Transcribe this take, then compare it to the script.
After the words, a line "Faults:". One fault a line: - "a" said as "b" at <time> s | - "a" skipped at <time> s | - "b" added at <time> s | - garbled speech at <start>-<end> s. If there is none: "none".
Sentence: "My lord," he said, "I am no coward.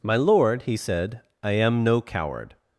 "My lord," he said, "I am no coward.
Faults:
none